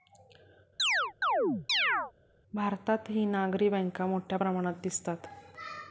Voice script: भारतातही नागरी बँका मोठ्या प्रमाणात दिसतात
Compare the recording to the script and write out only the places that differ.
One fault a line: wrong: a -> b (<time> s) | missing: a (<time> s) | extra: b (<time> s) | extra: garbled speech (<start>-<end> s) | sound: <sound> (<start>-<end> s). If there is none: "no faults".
sound: chirp (0.8-2.1 s)